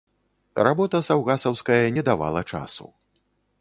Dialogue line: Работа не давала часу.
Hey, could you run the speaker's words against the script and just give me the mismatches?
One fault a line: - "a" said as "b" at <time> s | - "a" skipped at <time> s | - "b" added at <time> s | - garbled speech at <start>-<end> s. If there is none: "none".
- "саўгасаўская" added at 1.1 s